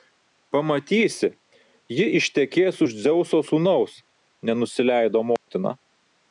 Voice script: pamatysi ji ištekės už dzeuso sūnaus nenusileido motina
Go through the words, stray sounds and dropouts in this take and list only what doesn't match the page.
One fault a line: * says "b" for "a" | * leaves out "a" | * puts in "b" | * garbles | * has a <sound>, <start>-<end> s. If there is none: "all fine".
* has a dropout, 5.4-5.5 s